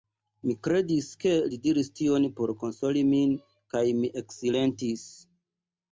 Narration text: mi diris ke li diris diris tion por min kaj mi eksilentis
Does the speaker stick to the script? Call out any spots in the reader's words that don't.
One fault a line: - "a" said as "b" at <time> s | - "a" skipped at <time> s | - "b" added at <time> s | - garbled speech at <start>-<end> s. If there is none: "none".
- "diris" said as "kredis" at 0.7 s
- "diris" skipped at 1.9 s
- "konsoli" added at 2.6 s